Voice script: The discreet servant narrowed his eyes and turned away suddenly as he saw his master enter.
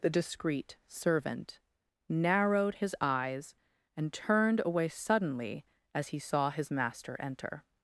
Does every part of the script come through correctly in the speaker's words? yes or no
yes